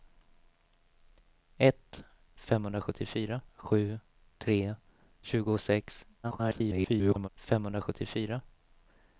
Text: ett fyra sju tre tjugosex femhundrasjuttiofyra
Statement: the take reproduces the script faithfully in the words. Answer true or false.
false